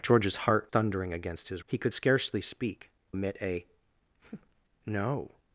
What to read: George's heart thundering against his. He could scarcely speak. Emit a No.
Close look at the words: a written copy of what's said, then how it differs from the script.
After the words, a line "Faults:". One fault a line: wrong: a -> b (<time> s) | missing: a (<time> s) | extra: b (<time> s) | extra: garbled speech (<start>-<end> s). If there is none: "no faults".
George's heart thundering against his. He could scarcely speak. Emit a No.
Faults:
no faults